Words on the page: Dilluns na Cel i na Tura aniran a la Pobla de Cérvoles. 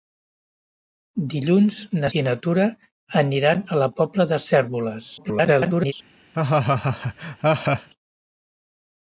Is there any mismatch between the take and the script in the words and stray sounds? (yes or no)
yes